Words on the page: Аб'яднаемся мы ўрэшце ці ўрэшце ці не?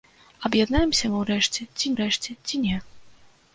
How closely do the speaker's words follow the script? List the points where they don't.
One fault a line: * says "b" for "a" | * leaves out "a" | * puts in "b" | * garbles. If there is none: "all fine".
all fine